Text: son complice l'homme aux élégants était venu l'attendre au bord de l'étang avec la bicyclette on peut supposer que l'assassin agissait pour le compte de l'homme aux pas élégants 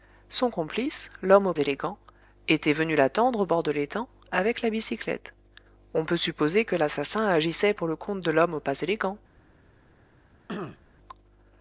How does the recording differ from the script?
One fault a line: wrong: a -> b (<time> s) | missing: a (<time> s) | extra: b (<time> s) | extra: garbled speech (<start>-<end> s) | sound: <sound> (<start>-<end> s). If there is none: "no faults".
sound: throat clearing (10.5-10.8 s)